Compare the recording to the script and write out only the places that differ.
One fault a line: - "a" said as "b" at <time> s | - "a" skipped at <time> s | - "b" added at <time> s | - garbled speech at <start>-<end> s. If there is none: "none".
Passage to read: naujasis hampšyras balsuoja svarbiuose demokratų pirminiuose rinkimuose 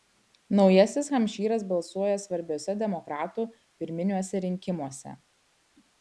none